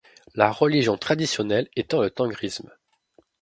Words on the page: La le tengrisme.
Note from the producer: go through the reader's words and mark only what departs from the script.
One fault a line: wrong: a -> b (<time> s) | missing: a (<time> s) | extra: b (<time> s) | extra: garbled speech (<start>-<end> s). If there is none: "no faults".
extra: religion traditionnelle étant (0.5 s)